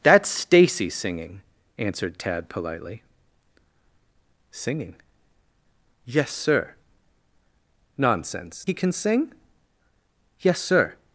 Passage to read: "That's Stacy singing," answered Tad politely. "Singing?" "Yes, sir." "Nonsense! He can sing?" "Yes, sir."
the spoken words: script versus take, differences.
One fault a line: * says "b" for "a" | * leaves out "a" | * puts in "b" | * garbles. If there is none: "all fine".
all fine